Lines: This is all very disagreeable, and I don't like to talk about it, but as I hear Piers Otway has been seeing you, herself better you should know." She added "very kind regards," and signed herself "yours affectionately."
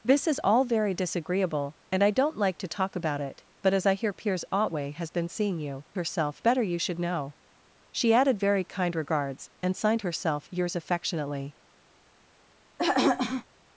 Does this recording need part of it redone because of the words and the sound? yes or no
yes